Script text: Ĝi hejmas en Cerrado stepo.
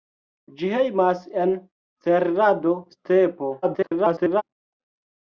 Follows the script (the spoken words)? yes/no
no